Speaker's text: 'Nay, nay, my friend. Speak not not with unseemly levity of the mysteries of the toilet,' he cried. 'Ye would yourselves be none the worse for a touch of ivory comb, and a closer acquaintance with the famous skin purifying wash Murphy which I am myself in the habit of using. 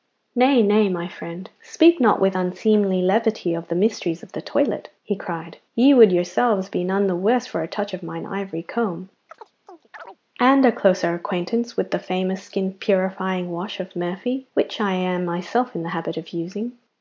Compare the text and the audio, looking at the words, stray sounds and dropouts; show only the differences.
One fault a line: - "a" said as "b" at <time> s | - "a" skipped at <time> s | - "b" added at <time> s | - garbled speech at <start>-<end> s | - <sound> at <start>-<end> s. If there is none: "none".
- "not" skipped at 2.2 s
- "mine" added at 8.0 s
- chirp at 9.3-10.2 s
- "of" added at 13.8 s